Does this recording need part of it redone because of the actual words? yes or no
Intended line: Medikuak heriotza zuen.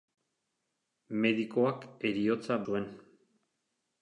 no